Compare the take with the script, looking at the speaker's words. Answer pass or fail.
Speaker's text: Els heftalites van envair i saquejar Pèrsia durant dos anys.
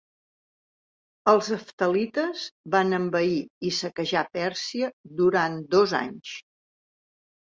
pass